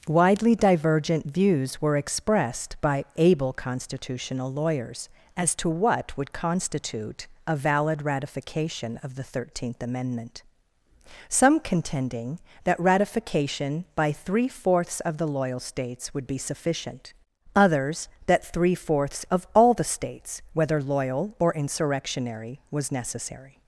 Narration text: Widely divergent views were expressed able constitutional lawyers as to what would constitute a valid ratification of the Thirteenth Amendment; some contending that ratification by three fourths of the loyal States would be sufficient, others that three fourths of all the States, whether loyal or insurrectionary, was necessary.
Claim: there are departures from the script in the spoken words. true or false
true